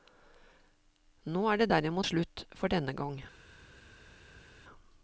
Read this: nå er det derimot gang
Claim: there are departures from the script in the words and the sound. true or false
true